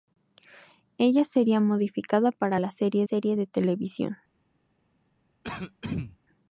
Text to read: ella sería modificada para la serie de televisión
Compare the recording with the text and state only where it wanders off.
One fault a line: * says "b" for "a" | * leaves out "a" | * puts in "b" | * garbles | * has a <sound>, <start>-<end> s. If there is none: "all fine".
* puts in "serie"
* has a throat clearing, 5.4-6.2 s